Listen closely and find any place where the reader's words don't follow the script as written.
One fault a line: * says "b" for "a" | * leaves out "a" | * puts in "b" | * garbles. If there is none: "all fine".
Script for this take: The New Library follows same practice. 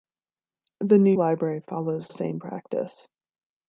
all fine